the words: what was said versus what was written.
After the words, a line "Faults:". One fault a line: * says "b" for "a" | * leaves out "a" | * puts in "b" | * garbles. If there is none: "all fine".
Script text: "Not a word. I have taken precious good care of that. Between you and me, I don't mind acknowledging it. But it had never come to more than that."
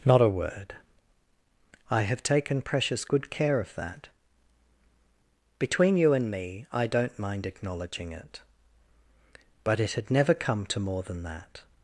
"Not a word. I have taken precious good care of that. Between you and me, I don't mind acknowledging it. But it had never come to more than that."
Faults:
all fine